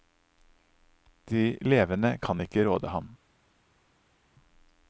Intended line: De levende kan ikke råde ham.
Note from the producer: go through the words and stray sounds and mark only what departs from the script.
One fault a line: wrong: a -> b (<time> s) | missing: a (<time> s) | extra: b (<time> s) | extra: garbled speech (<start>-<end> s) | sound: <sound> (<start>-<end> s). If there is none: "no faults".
no faults